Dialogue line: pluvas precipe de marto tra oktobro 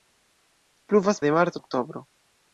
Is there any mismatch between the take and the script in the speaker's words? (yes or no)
yes